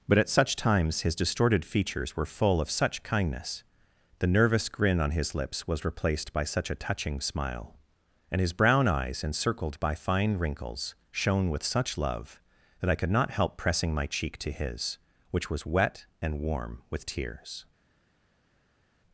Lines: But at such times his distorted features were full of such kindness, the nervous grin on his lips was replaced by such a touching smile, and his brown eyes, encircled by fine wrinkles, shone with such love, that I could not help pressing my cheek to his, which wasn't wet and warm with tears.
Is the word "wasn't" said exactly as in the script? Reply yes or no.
no